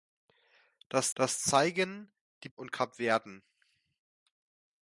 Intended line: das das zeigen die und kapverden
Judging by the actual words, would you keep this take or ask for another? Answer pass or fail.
pass